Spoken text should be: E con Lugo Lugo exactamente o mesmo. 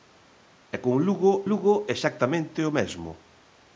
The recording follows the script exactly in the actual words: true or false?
true